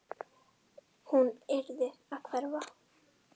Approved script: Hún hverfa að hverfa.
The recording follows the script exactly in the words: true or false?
false